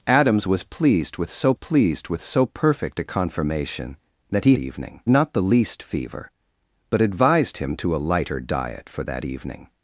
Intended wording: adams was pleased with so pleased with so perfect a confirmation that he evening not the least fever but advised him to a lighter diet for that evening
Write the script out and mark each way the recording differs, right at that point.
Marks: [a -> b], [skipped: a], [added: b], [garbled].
adams was pleased with so pleased with so perfect a confirmation that he evening not the least fever but advised him to a lighter diet for that evening